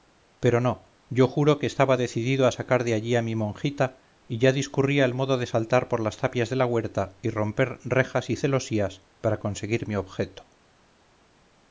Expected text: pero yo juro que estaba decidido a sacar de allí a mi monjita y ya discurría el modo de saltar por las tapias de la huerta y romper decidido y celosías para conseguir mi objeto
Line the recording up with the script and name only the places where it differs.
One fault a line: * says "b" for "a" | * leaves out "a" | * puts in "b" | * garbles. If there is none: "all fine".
* puts in "no"
* says "rejas" for "decidido"